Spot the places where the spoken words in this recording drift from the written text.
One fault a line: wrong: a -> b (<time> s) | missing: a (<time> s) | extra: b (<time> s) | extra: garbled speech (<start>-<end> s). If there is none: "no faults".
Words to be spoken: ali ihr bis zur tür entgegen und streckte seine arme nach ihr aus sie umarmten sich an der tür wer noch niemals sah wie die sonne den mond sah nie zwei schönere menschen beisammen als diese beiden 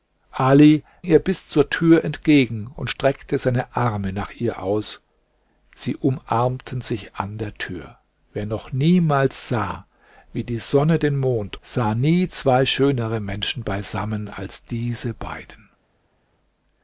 no faults